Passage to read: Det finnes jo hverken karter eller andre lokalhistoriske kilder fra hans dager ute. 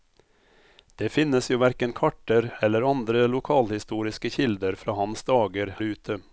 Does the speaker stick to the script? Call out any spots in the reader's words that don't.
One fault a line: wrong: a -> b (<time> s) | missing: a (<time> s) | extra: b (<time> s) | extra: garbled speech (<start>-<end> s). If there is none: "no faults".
no faults